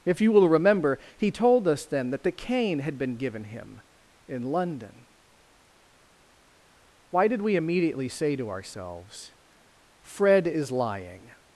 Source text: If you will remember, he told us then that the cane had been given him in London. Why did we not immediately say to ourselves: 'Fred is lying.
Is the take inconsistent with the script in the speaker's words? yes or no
yes